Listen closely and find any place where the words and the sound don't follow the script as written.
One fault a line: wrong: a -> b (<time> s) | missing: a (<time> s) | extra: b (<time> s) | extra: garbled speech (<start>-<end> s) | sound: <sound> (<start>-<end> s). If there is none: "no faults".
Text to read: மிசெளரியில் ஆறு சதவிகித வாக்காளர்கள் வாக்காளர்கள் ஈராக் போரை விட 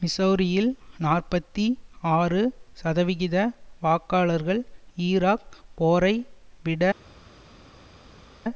extra: நாற்பத்தி (1.0 s)
missing: வாக்காளர்கள் (4.6 s)